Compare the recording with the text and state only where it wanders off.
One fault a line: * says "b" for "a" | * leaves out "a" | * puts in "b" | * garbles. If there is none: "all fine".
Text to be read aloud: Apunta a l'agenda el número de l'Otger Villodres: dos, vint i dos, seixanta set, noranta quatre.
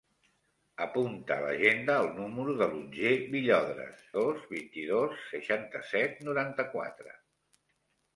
all fine